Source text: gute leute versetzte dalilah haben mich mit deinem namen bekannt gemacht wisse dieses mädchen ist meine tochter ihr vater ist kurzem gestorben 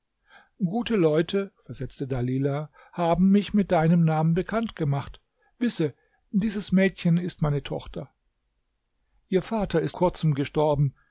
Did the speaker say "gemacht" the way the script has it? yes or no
yes